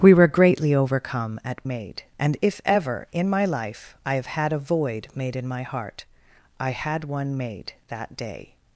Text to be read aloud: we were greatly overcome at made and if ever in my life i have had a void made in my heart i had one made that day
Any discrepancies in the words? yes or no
no